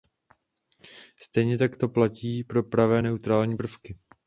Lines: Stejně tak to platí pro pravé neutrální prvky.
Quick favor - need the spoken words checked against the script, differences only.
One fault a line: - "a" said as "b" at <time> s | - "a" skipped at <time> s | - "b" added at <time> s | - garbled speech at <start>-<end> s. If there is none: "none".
none